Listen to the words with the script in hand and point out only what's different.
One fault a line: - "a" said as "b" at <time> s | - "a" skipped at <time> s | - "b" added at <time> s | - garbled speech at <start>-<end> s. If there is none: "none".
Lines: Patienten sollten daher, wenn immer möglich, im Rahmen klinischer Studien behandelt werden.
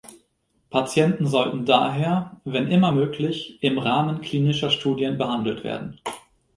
none